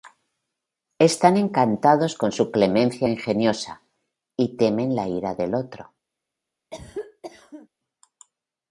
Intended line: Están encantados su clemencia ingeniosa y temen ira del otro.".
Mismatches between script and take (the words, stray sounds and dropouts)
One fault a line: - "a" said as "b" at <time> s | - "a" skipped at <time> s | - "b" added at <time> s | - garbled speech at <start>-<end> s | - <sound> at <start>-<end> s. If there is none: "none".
- "con" added at 2.1 s
- "la" added at 4.9 s
- cough at 6.7-7.7 s